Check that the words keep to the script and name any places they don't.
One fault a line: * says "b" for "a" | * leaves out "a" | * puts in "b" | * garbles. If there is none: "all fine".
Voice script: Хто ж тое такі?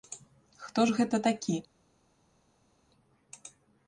* says "гэта" for "тое"